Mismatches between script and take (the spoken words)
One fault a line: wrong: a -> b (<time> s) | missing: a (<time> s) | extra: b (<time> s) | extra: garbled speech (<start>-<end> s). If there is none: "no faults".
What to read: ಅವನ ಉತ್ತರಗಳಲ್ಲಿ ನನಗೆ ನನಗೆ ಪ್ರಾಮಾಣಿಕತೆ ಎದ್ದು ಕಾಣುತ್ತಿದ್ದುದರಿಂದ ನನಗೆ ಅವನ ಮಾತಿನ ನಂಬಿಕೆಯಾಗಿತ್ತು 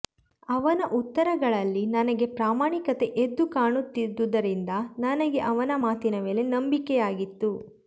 missing: ನನಗೆ (2.3 s)
extra: ಮೇಲೆ (6.3 s)